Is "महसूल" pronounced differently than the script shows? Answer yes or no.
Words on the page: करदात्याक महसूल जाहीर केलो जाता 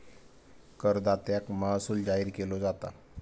no